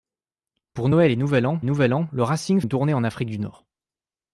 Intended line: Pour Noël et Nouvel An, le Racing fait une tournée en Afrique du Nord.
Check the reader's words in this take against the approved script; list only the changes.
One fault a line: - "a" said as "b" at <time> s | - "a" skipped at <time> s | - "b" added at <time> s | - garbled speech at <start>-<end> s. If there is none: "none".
- "Nouvel An" added at 1.6 s
- "fait" skipped at 2.6 s